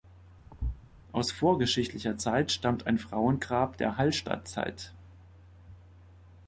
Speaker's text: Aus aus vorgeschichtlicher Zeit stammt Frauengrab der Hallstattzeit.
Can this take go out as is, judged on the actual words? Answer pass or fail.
fail